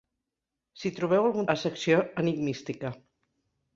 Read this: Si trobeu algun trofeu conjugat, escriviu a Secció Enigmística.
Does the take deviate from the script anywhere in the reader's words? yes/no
yes